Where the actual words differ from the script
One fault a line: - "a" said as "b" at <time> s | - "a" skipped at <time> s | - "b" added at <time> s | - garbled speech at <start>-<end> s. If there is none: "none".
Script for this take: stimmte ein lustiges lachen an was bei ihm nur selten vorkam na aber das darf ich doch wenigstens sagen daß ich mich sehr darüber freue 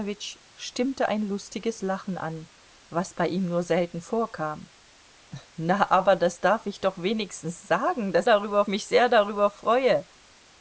- "ich" said as "darüber" at 8.2 s